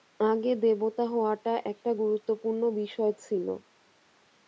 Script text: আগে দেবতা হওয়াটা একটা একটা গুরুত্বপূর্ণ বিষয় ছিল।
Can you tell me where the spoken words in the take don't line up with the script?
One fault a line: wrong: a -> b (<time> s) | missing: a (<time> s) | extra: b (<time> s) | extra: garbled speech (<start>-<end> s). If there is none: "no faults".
missing: একটা (1.9 s)